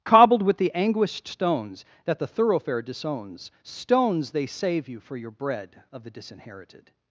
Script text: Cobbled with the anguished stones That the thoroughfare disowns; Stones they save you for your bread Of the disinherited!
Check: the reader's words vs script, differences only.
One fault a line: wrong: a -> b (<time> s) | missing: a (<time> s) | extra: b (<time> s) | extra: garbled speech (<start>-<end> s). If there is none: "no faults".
no faults